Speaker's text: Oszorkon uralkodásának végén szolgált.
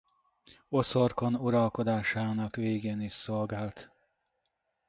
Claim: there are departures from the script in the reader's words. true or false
true